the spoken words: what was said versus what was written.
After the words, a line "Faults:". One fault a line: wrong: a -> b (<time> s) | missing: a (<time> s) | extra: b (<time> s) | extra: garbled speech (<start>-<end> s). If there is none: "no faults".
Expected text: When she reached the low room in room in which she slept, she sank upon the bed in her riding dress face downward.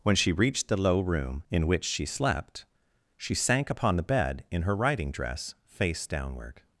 When she reached the low room in which she slept, she sank upon the bed in her riding dress face downward.
Faults:
missing: room in (1.7 s)